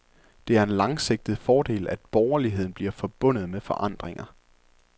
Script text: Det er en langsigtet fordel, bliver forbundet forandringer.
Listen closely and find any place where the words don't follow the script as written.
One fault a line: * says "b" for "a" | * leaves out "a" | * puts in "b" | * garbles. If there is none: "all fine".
* puts in "at borgerligheden"
* puts in "med"